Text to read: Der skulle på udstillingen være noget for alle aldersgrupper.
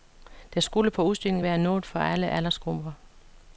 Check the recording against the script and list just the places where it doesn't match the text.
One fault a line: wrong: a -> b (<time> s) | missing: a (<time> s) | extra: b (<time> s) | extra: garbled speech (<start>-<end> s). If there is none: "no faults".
no faults